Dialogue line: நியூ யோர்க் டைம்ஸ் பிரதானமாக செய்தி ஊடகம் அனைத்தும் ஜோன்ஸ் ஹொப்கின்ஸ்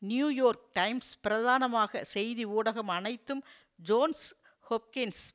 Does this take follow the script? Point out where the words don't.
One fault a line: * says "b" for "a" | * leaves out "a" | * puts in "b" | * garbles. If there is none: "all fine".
all fine